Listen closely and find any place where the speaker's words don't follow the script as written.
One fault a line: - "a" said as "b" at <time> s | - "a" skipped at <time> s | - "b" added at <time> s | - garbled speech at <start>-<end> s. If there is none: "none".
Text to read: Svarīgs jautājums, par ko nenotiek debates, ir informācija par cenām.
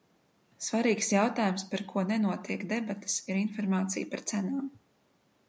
none